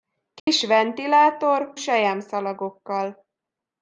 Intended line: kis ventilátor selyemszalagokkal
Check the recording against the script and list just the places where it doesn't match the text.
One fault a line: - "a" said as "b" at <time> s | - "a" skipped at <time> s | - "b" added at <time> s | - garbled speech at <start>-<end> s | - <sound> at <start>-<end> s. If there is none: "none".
- dropout at 0.4-0.5 s